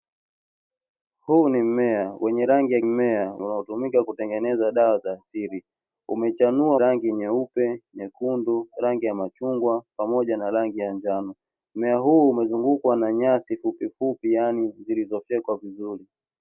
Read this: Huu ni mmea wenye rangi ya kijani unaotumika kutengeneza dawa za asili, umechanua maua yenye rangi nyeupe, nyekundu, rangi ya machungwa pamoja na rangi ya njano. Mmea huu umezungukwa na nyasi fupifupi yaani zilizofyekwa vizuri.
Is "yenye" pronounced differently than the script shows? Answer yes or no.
yes